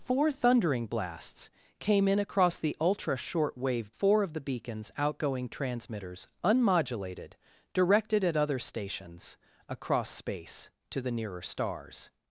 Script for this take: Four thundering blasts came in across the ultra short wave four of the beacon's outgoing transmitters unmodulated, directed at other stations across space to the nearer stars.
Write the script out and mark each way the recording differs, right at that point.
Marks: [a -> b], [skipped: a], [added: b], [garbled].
Four thundering blasts came in across the ultra short wave four of the beacon's outgoing transmitters unmodulated, directed at other stations across space to the nearer stars.